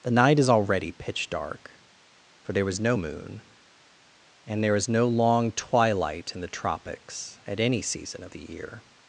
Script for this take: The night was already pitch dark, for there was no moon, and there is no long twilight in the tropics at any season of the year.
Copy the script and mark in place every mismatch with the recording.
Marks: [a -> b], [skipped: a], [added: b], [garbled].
The night [was -> is] already pitch dark, for there was no moon, and there is no long twilight in the tropics at any season of the year.